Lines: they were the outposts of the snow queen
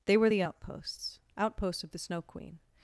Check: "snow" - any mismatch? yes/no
no